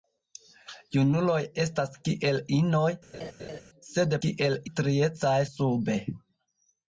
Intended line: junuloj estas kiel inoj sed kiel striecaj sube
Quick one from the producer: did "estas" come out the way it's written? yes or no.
yes